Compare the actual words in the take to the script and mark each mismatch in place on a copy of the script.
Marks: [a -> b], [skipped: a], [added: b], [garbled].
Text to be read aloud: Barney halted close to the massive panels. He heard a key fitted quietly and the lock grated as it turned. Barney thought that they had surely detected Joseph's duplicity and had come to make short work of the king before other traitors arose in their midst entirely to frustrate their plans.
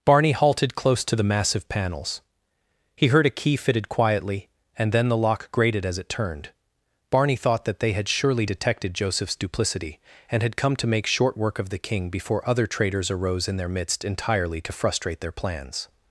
Barney halted close to the massive panels. He heard a key fitted quietly and [added: then] the lock grated as it turned. Barney thought that they had surely detected Joseph's duplicity and had come to make short work of the king before other traitors arose in their midst entirely to frustrate their plans.